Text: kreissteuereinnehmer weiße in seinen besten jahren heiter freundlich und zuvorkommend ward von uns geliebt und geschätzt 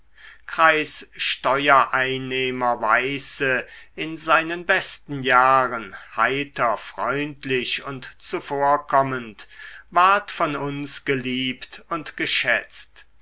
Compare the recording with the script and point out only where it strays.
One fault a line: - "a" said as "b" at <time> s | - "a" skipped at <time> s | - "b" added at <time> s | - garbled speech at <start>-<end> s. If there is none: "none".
none